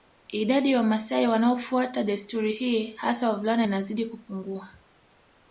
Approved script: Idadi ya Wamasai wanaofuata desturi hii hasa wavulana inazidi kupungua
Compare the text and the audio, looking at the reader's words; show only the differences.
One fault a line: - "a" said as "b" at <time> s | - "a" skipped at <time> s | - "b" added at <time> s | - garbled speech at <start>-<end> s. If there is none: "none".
none